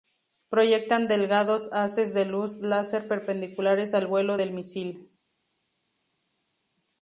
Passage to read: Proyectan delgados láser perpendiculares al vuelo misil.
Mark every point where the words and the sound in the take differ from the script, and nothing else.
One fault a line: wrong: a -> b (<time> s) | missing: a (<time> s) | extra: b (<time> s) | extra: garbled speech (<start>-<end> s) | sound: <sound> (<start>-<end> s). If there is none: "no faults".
extra: haces de luz (1.7 s)
extra: del (4.4 s)